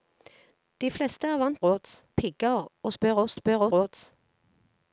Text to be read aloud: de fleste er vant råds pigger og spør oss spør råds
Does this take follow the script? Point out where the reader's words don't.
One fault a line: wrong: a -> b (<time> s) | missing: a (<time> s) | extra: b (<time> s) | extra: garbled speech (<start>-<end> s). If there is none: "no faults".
no faults